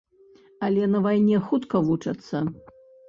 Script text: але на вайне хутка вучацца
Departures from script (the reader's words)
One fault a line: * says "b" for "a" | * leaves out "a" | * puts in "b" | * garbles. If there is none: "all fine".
all fine